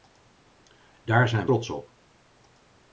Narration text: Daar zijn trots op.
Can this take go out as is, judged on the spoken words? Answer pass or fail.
pass